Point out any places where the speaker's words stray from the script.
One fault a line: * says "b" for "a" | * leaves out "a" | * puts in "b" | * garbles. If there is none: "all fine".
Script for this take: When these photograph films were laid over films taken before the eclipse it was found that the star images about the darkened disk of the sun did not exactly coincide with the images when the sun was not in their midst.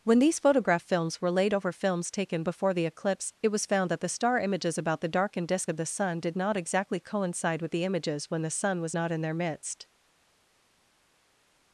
all fine